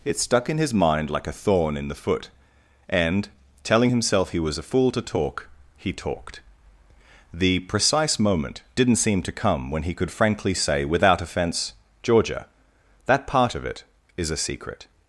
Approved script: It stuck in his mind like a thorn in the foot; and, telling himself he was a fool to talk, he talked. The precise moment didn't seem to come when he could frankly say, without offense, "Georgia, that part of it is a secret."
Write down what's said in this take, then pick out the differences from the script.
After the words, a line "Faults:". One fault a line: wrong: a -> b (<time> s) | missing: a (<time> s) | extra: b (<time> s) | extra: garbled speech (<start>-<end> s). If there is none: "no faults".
It stuck in his mind like a thorn in the foot; and, telling himself he was a fool to talk, he talked. The precise moment didn't seem to come when he could frankly say, without offense, "Georgia, that part of it is a secret."
Faults:
no faults